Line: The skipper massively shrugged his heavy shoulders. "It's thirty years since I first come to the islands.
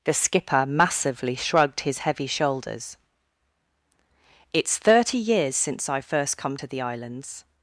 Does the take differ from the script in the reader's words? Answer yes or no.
no